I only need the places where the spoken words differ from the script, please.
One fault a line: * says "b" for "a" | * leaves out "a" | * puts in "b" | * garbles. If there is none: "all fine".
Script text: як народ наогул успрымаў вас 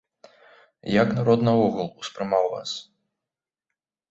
all fine